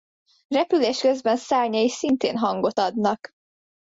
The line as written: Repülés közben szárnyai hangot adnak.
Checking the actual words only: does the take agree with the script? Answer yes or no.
no